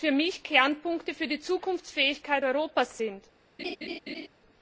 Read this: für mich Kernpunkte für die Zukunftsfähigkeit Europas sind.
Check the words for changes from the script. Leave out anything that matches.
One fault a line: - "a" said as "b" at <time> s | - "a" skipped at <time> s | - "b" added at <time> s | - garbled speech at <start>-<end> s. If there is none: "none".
none